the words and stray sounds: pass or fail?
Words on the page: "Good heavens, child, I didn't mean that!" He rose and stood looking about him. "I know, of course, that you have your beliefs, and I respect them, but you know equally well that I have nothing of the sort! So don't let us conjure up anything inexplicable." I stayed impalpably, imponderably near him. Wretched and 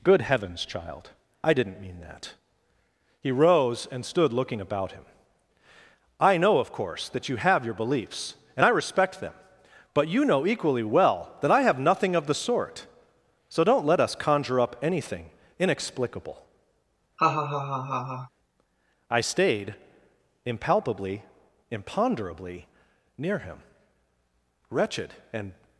fail